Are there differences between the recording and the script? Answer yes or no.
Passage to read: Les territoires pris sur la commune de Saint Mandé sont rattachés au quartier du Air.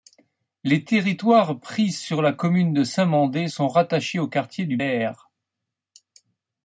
no